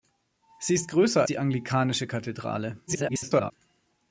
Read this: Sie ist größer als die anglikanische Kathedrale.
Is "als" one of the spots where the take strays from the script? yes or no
yes